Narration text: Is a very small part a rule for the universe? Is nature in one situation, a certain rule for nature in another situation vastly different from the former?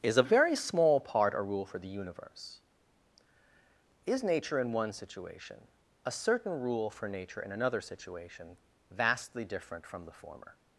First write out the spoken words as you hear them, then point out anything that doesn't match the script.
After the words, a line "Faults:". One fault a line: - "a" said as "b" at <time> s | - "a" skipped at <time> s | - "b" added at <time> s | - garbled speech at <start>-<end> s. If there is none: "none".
Is a very small part a rule for the universe? Is nature in one situation, a certain rule for nature in another situation vastly different from the former?
Faults:
none